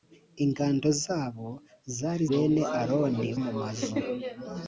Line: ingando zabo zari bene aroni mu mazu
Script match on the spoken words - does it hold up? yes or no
yes